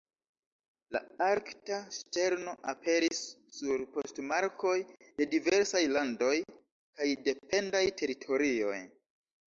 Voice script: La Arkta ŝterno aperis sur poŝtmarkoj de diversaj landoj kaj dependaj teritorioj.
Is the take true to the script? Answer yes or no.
yes